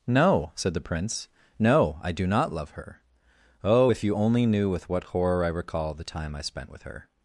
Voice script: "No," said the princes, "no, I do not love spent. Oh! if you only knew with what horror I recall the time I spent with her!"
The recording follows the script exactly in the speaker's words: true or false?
false